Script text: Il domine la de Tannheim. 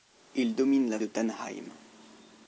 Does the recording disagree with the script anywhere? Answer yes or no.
no